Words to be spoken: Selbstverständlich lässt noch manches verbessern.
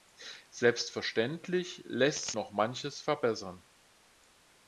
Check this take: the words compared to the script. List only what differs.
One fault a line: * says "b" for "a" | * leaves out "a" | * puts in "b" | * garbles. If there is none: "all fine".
all fine